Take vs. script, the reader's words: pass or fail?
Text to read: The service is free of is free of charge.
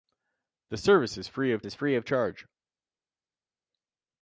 pass